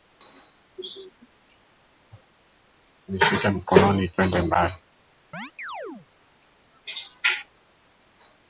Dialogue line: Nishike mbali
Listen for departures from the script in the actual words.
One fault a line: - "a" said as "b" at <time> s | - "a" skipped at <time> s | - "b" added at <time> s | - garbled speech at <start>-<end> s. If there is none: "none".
- "mkononi twende" added at 3.5 s